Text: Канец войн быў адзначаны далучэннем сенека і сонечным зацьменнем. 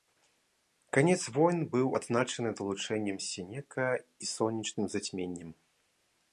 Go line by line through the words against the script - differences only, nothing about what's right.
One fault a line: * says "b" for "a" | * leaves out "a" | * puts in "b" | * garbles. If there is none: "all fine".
all fine